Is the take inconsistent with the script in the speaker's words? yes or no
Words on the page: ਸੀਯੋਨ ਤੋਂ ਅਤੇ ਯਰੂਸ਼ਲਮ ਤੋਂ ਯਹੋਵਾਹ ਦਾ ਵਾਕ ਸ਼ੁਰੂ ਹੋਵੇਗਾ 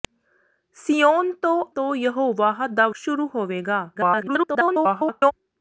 yes